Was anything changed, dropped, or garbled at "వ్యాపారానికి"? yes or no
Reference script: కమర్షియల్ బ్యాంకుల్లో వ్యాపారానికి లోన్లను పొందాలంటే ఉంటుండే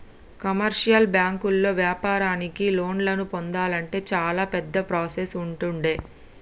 no